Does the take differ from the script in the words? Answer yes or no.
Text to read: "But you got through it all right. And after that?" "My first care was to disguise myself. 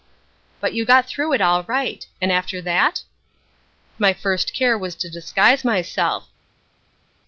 no